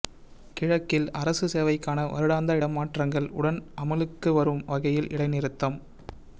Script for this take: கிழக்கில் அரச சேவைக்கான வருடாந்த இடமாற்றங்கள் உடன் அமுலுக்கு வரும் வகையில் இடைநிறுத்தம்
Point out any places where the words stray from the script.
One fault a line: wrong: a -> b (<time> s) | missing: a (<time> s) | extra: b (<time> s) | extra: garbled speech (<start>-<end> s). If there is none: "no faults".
no faults